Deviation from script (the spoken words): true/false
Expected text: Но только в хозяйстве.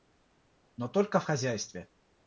false